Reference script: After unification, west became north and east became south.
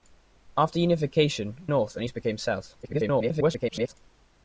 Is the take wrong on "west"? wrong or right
wrong